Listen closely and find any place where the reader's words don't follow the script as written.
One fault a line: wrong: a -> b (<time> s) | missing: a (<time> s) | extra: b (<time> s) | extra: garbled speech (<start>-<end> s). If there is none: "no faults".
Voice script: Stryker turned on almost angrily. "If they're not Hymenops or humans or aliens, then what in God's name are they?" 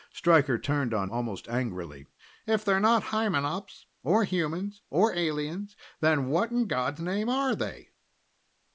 no faults